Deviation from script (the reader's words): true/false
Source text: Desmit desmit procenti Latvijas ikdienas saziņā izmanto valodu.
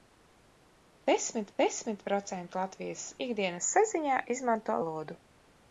false